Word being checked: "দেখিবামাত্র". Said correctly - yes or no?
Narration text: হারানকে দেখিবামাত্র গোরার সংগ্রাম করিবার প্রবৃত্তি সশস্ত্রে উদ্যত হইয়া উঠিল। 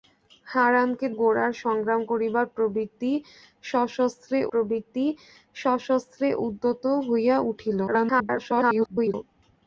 no